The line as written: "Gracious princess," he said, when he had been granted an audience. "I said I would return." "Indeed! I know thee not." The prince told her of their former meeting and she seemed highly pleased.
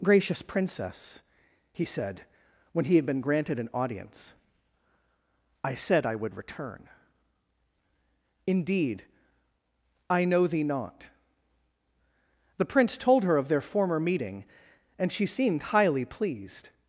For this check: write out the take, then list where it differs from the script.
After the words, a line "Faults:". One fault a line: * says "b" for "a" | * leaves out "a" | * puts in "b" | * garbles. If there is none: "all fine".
"Gracious princess," he said, when he had been granted an audience. "I said I would return." "Indeed! I know thee not." The prince told her of their former meeting and she seemed highly pleased.
Faults:
all fine